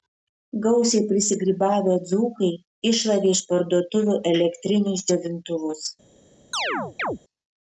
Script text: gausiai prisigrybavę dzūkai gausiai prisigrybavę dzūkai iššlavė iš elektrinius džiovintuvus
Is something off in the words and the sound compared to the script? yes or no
yes